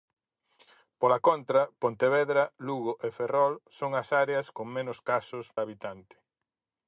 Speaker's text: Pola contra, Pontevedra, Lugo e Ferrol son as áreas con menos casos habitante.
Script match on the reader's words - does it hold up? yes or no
yes